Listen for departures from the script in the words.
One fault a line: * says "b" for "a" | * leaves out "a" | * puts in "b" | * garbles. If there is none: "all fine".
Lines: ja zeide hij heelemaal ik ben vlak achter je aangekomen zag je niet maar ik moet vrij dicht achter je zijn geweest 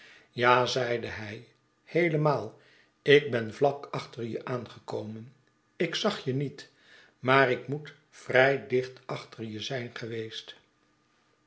* puts in "ik"